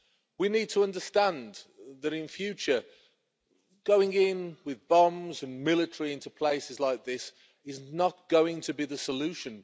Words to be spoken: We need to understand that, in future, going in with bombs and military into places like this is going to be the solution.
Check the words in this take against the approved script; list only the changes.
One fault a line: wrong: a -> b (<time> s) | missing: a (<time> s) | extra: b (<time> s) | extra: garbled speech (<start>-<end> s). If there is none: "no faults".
extra: not (7.9 s)